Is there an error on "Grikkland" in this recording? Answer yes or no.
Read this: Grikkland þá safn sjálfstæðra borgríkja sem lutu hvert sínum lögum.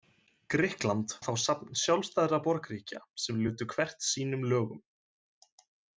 no